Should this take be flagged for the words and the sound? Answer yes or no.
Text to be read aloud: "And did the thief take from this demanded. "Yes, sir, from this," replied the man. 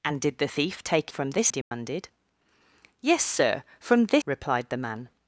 yes